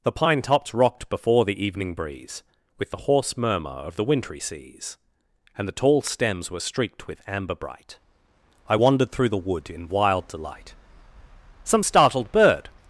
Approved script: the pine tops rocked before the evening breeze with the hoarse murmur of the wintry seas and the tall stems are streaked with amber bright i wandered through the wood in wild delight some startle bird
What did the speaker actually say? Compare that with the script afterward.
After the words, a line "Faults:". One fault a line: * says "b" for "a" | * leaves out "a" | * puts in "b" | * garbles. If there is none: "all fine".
the pine tops rocked before the evening breeze with the hoarse murmur of the wintry seas and the tall stems were streaked with amber bright i wandered through the wood in wild delight some startled bird
Faults:
* says "were" for "are"
* says "startled" for "startle"